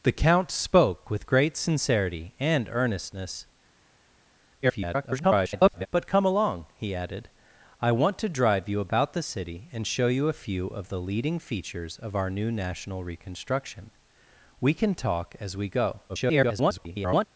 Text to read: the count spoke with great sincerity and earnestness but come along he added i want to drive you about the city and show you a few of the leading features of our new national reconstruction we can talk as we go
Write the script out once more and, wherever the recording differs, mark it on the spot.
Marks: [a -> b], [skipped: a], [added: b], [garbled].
the count spoke with great sincerity and earnestness [garbled] but come along he added i want to drive you about the city and show you a few of the leading features of our new national reconstruction we can talk as we go [garbled]